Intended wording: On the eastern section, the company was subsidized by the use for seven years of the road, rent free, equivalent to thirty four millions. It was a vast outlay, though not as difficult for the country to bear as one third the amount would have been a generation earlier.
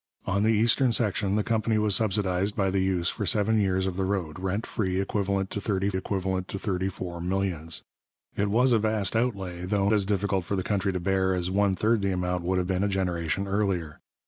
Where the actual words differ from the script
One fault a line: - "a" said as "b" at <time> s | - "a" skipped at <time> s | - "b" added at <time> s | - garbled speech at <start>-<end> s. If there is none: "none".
- "equivalent to thirty" added at 5.9 s
- "not" skipped at 9.9 s